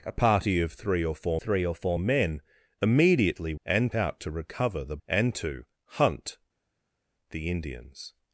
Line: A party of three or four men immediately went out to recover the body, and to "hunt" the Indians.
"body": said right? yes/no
no